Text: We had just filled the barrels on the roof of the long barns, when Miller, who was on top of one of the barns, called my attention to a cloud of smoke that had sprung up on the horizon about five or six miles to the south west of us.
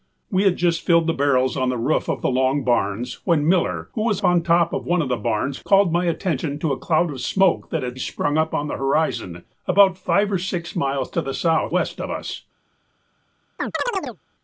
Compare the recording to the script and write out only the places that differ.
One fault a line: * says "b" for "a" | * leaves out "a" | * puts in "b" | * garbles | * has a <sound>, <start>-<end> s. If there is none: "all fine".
* has a chirp, 13.6-14.2 s